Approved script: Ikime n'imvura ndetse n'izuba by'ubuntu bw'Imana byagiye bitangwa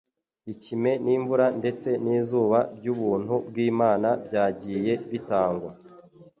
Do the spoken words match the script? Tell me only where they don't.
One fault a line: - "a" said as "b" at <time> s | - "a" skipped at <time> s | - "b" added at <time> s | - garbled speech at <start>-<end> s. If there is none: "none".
none